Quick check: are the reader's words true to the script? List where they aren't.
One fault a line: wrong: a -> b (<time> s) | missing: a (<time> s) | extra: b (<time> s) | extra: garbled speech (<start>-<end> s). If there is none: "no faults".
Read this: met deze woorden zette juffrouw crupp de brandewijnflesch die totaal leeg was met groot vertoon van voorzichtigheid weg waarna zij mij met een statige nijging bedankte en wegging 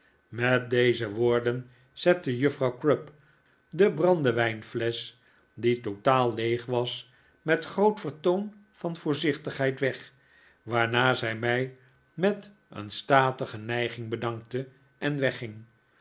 no faults